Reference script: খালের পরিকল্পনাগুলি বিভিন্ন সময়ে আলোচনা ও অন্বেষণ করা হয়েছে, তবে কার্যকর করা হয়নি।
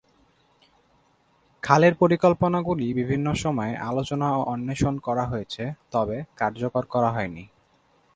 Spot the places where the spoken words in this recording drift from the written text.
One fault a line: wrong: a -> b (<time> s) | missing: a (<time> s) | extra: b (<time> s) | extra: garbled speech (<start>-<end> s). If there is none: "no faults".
no faults